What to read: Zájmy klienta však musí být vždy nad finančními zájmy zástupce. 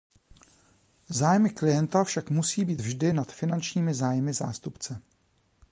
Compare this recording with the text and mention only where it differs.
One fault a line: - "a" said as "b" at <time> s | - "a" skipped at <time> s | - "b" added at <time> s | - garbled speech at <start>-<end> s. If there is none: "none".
none